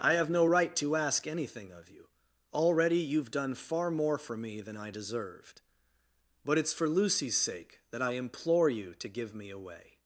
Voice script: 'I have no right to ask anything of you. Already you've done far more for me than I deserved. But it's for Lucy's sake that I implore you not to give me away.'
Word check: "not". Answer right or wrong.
wrong